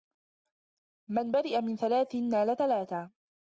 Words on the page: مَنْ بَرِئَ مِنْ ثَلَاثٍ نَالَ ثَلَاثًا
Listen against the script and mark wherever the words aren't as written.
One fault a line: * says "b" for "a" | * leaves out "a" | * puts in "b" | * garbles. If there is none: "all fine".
all fine